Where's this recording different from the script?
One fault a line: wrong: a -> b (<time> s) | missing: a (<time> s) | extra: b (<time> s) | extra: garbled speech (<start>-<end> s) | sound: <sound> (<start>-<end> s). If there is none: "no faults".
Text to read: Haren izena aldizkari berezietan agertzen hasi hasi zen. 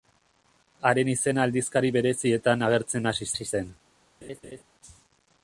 sound: laugh (4.2-4.6 s)